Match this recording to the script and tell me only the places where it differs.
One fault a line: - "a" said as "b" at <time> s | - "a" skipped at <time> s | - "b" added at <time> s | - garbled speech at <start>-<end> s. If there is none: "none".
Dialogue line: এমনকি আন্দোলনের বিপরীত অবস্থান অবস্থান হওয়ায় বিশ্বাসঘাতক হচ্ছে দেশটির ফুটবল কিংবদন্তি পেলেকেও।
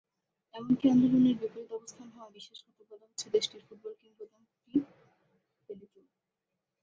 - "অবস্থান" skipped at 2.1 s
- "বলা" added at 2.9 s